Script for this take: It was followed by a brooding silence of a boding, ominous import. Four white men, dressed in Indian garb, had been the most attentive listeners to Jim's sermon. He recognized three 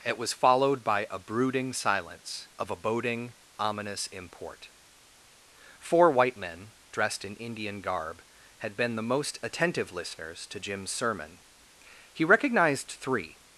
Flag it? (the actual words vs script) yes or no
no